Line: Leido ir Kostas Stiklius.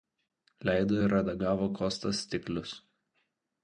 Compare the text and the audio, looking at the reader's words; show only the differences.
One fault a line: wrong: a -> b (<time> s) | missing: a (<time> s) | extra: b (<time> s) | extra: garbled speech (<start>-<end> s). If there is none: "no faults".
extra: redagavo (1.1 s)